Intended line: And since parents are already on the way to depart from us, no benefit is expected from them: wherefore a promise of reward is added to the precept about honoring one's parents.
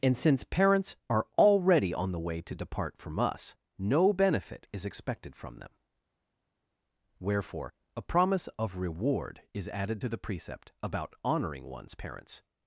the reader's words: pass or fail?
pass